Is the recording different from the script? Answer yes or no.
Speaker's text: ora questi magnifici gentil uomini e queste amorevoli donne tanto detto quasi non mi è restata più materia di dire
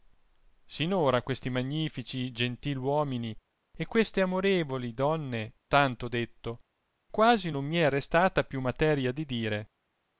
no